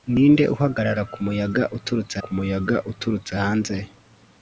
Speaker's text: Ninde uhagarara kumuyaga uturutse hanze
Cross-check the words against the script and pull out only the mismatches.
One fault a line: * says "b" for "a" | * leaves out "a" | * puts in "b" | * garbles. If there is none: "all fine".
* puts in "kumuyaga uturutse"